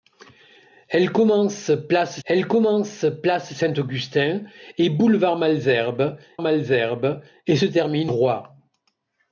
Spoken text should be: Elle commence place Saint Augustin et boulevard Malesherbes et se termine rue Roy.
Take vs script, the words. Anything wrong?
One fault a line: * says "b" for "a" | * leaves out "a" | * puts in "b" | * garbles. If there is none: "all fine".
* puts in "elle commence place"
* puts in "Malesherbes"
* leaves out "rue"